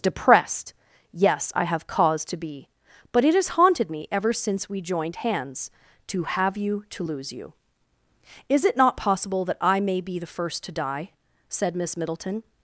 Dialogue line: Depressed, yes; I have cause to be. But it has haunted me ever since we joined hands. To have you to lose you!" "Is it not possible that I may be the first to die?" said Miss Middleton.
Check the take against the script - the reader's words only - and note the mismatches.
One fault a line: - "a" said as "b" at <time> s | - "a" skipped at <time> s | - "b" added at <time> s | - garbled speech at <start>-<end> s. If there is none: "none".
none